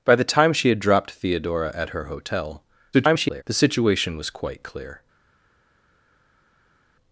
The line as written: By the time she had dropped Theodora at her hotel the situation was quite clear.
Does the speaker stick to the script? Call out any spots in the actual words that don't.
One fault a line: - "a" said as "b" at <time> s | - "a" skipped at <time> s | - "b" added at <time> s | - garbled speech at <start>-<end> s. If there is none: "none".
- garbled speech at 2.9-3.4 s